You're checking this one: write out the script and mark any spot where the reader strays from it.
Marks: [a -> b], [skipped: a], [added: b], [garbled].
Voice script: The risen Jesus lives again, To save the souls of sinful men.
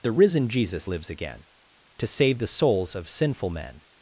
The risen Jesus lives again, To save the souls of sinful men.